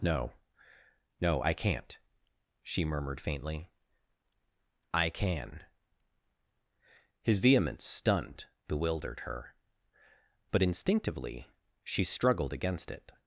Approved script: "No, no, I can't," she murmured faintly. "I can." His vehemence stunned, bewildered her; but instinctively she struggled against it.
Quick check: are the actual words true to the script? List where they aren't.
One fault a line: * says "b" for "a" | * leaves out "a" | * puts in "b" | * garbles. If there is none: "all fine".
all fine